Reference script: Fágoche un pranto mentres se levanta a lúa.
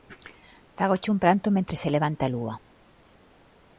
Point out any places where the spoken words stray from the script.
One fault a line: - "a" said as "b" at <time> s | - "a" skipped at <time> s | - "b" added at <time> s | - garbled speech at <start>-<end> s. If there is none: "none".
none